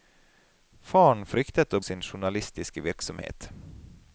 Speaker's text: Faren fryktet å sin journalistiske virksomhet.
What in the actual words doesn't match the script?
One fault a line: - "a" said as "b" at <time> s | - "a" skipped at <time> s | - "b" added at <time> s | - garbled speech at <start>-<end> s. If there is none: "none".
none